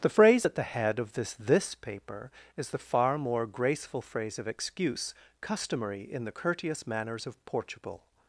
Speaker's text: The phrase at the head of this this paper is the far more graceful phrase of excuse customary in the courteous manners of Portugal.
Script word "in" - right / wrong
right